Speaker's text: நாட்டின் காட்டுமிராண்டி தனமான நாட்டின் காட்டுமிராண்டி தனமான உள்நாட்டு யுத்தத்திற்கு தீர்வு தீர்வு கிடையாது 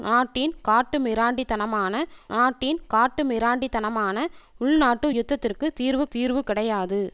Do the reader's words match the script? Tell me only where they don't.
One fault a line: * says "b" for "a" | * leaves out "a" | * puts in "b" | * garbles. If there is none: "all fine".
all fine